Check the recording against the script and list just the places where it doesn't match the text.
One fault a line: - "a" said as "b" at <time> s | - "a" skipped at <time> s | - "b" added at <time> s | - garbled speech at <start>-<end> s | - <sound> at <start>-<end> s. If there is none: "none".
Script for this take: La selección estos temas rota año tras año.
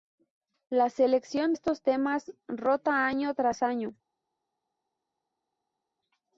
none